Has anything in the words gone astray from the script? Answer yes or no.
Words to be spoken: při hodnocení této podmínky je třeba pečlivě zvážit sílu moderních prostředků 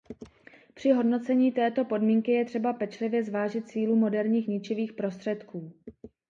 yes